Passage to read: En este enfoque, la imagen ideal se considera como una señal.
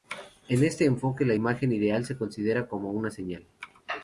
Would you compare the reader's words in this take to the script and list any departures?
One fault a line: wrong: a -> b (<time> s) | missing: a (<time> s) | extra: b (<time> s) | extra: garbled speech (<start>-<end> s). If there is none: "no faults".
no faults